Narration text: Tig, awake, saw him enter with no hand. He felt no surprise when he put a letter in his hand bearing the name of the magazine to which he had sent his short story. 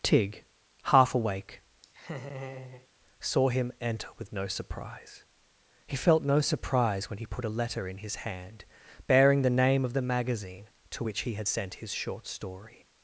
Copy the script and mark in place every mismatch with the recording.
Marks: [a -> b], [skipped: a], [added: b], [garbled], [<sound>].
Tig, [added: half] awake, [laugh] saw him enter with no [hand. -> surprise] He felt no surprise when he put a letter in his hand bearing the name of the magazine to which he had sent his short story.